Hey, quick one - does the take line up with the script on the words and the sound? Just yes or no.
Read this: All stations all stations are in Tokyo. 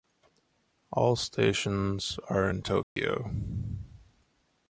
no